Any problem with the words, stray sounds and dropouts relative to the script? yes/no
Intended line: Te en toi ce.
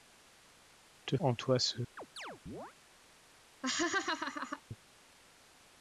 yes